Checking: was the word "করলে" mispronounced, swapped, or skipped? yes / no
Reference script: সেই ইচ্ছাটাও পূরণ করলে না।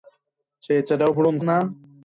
yes